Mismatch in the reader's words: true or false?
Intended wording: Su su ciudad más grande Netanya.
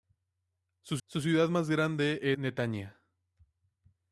false